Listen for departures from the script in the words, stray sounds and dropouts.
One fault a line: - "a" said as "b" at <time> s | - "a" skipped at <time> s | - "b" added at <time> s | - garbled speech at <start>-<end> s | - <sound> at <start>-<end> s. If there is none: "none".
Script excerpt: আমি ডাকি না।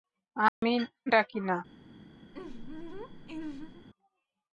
- dropout at 0.5-0.6 s
- laugh at 2.3-3.9 s